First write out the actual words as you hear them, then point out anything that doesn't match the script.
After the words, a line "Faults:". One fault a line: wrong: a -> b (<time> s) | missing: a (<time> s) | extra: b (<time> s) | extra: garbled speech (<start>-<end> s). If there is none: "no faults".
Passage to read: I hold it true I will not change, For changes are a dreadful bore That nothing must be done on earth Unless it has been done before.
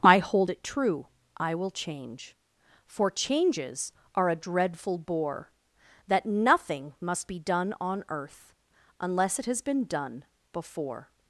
I hold it true I will change, For changes are a dreadful bore That nothing must be done on earth Unless it has been done before.
Faults:
missing: not (1.7 s)